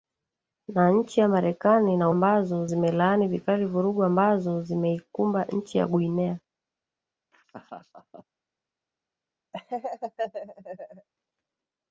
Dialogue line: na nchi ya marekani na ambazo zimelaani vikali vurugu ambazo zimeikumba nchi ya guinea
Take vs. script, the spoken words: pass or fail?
pass